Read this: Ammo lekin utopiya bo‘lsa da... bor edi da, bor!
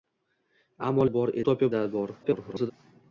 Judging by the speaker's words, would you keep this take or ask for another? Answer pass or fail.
fail